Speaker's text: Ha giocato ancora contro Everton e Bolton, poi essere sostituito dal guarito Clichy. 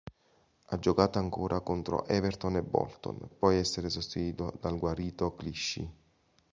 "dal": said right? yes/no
yes